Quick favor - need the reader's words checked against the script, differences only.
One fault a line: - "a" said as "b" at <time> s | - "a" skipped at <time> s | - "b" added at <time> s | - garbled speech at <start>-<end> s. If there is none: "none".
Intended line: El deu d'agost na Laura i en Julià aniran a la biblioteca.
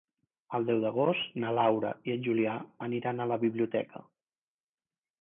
none